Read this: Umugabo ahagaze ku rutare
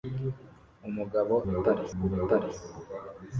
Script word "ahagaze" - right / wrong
wrong